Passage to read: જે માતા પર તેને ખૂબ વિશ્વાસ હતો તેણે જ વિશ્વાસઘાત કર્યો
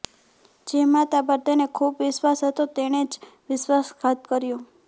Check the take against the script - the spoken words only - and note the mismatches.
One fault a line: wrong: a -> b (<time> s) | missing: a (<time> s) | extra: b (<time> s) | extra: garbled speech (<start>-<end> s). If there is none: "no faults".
no faults